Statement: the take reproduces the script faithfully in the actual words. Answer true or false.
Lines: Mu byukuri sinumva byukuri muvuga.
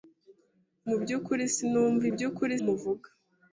true